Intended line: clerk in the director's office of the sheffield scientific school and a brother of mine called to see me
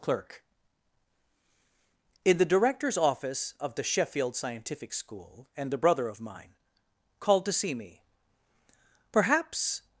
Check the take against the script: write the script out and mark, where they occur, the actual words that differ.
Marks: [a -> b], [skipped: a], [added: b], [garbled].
clerk in the director's office of the sheffield scientific school and a brother of mine called to see me [added: perhaps]